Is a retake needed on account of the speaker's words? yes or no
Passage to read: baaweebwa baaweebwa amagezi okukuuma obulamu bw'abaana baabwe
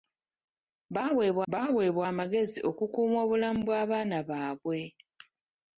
no